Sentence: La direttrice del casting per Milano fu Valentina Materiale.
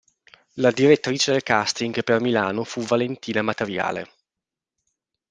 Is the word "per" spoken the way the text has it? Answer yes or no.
yes